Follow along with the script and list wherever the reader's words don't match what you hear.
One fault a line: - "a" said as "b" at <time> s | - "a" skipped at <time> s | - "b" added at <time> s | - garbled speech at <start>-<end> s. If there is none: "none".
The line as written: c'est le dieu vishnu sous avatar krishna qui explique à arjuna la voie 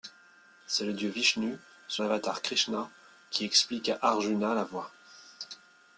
none